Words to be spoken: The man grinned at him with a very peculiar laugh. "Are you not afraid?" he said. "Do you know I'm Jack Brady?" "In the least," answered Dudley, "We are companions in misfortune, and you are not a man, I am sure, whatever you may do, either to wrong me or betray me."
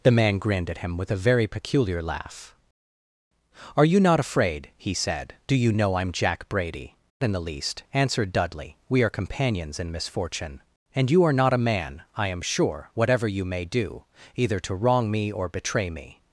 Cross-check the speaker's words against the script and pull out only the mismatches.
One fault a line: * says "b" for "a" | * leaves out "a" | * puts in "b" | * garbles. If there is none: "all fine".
all fine